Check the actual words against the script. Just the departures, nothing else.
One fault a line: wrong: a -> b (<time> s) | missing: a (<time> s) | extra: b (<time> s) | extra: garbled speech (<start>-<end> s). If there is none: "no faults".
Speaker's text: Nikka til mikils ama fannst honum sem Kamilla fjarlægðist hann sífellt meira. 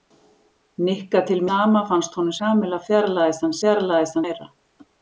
missing: mikils (1.4 s)
missing: sem (2.4 s)
wrong: sífellt -> fjarlægðist (3.6 s)